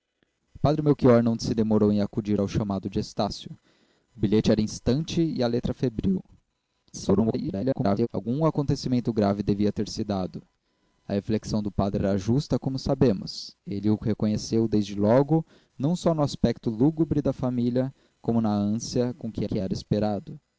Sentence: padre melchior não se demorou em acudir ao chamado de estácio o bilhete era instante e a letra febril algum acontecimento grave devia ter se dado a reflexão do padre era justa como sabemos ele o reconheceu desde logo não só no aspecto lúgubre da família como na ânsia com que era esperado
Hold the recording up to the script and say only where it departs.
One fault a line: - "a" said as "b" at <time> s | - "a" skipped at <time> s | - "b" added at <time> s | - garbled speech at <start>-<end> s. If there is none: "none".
- garbled speech at 6.9-8.1 s
- "que" added at 19.4 s